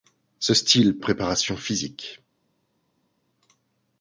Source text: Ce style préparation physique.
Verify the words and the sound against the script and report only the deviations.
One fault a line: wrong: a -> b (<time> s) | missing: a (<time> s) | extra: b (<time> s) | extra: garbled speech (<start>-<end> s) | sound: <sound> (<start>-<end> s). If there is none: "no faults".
no faults